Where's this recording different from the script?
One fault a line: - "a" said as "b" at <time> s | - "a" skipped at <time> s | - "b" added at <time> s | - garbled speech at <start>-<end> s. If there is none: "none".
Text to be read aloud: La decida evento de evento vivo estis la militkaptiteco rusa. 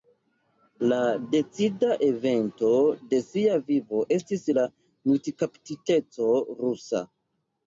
- "evento" said as "sia" at 3.3 s